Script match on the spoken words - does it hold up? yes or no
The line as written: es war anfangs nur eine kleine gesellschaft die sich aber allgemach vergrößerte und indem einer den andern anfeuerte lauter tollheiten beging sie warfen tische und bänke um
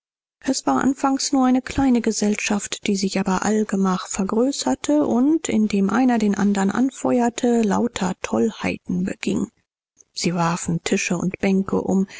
yes